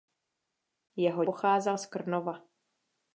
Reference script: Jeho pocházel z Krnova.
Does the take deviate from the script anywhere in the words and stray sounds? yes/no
no